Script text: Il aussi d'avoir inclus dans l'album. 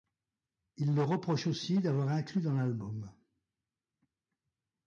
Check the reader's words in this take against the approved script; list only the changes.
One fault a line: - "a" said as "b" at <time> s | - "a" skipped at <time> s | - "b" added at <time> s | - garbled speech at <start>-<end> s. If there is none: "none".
- "leur reproche" added at 0.9 s